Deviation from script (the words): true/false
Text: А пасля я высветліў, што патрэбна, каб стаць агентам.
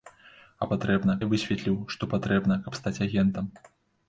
true